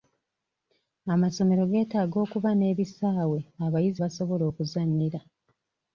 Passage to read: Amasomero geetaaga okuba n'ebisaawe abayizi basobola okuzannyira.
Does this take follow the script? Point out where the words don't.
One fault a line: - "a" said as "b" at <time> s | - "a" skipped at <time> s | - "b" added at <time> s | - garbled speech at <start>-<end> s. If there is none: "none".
none